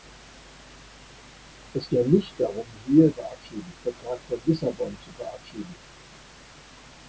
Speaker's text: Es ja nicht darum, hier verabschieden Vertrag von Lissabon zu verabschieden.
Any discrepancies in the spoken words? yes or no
no